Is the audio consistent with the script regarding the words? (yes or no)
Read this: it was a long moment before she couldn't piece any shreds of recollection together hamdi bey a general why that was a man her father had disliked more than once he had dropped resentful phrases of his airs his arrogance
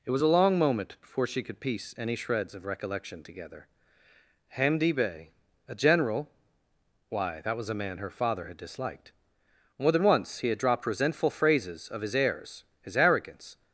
no